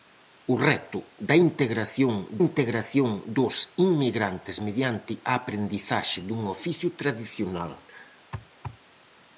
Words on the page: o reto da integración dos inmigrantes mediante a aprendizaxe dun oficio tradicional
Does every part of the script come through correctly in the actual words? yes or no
no